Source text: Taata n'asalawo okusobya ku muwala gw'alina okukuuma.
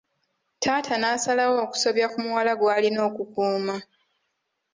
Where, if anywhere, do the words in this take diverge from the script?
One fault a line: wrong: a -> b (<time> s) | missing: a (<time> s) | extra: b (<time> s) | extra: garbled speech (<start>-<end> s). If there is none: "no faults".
no faults